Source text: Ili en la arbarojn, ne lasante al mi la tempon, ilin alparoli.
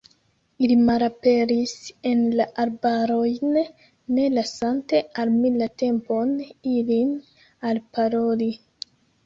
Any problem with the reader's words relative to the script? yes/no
yes